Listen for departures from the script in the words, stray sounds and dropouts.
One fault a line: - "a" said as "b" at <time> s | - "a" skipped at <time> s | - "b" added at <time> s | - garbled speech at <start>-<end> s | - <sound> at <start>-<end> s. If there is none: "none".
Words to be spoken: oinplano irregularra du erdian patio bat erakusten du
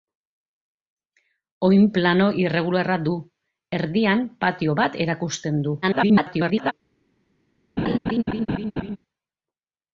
- garbled speech at 5.8-6.7 s
- laugh at 7.8-9.0 s